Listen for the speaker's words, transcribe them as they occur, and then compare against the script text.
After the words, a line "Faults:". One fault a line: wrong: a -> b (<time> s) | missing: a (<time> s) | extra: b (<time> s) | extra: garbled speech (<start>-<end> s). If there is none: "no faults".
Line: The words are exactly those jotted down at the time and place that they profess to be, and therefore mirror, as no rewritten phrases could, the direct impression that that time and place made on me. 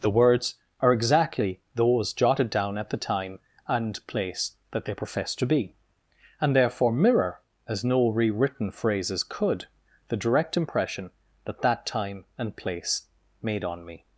The words are exactly those jotted down at the time and place that they profess to be, and therefore mirror, as no rewritten phrases could, the direct impression that that time and place made on me.
Faults:
no faults